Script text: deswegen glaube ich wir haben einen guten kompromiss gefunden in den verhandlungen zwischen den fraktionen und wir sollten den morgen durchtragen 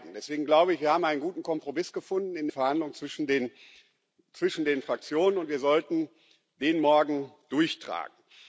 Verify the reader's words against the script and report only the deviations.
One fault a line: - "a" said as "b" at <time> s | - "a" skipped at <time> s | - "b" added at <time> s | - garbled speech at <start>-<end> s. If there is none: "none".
- "den" skipped at 2.5 s